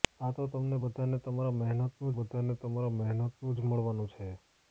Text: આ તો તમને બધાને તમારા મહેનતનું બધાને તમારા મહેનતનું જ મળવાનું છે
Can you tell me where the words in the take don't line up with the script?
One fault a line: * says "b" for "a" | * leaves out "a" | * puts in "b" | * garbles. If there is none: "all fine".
all fine